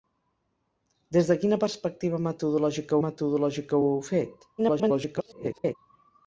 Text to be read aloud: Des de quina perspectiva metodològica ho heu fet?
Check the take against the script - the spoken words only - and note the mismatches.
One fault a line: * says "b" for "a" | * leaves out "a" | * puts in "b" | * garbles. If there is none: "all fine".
* puts in "metodològica"
* garbles